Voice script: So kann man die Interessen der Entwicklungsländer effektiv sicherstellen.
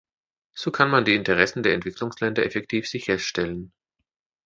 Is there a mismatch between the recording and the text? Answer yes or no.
no